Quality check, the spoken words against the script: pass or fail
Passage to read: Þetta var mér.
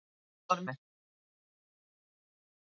pass